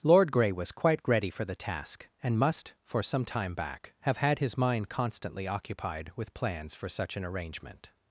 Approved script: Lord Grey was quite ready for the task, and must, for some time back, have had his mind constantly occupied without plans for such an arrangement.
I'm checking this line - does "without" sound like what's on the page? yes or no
no